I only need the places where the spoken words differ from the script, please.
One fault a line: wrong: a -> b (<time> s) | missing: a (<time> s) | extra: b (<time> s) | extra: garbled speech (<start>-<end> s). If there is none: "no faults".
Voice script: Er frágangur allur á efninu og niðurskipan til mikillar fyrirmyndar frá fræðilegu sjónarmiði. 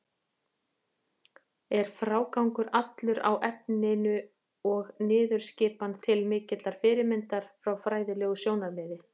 no faults